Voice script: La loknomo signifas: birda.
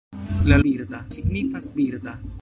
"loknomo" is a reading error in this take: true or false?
true